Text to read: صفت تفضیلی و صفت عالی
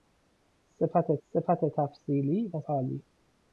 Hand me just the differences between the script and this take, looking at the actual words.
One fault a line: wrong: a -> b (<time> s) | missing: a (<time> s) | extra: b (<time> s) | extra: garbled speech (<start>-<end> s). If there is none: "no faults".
extra: صفت (1.2 s)
missing: صفت (2.6 s)